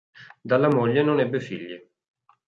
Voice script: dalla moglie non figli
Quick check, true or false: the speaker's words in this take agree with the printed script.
false